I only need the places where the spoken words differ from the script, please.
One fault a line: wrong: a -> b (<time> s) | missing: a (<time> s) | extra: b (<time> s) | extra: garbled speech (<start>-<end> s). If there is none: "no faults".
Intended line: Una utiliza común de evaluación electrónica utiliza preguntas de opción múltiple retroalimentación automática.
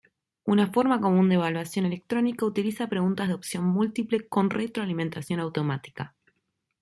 wrong: utiliza -> forma (0.7 s)
extra: con (4.3 s)